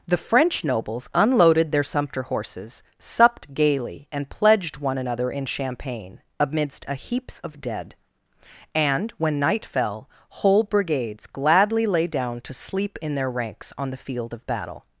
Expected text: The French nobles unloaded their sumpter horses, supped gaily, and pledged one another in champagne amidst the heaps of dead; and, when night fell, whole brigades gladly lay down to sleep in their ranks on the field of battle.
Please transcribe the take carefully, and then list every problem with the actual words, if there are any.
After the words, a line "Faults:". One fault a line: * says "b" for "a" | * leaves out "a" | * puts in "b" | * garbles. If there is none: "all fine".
The French nobles unloaded their sumpter horses, supped gaily, and pledged one another in champagne amidst a heaps of dead; and, when night fell, whole brigades gladly lay down to sleep in their ranks on the field of battle.
Faults:
* says "a" for "the"